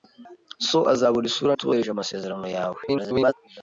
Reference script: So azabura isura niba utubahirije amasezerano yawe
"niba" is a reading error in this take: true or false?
true